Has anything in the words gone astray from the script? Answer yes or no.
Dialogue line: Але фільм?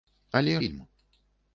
no